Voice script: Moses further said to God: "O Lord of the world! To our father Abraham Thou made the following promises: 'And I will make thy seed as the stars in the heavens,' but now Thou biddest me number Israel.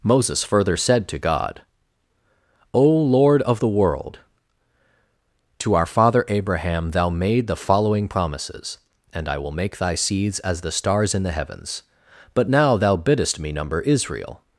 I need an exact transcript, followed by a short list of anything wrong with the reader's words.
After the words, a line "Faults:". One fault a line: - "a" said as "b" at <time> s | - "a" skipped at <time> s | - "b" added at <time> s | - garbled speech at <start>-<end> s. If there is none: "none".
Moses further said to God: "O Lord of the world! To our father Abraham Thou made the following promises: 'And I will make thy seeds as the stars in the heavens,' but now Thou biddest me number Israel.
Faults:
- "seed" said as "seeds" at 9.9 s